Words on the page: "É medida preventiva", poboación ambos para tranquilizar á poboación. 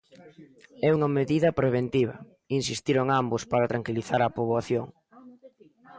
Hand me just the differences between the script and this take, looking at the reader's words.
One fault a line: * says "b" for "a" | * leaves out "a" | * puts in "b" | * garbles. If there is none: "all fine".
* puts in "unha"
* says "insistiron" for "poboación"